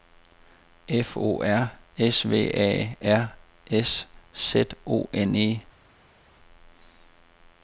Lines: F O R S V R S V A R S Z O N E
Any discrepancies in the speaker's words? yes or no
yes